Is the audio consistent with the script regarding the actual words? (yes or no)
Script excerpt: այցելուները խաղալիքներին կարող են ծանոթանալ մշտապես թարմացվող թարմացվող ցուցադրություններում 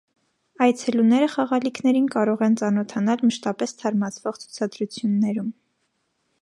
no